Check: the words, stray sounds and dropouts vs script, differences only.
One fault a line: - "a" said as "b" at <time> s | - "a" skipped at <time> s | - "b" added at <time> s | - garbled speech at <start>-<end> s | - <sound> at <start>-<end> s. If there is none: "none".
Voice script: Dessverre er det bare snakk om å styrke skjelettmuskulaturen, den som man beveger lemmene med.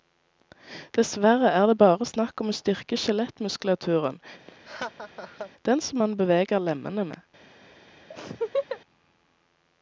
- laugh at 4.5-5.5 s
- laugh at 8.1-8.8 s